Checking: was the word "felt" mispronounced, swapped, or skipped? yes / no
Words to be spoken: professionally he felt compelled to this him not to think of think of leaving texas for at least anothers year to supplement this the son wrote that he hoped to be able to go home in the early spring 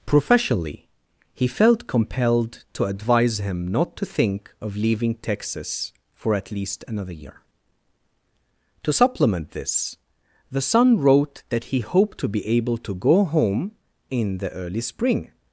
no